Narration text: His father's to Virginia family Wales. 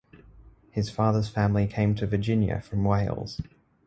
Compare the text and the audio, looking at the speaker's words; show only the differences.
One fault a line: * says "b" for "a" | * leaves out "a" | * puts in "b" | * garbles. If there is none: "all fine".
* puts in "family came"
* says "from" for "family"